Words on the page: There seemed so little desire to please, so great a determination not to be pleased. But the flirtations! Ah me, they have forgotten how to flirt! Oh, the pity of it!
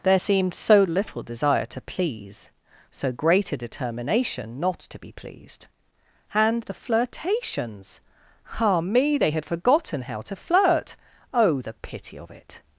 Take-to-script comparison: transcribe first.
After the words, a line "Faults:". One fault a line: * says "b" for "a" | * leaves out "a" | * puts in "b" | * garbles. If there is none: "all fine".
There seemed so little desire to please, so great a determination not to be pleased. And the flirtations! Ah me, they had forgotten how to flirt! Oh, the pity of it!
Faults:
* says "And" for "But"
* says "had" for "have"